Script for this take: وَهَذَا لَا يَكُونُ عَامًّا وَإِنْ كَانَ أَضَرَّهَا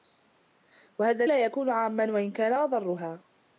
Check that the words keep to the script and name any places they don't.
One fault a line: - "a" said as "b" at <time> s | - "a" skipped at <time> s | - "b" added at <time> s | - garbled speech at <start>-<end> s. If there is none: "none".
none